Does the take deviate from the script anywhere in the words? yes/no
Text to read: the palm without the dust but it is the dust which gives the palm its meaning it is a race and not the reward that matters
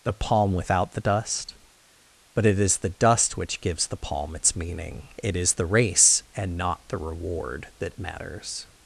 yes